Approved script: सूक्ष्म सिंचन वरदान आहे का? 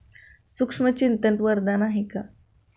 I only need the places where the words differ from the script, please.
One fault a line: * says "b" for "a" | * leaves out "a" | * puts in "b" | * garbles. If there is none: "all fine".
all fine